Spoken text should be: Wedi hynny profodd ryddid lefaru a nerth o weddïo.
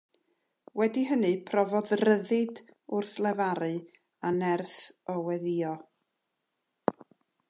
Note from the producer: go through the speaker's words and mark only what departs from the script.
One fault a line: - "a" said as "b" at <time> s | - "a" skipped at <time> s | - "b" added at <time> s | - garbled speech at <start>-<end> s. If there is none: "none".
- "wrth" added at 3.0 s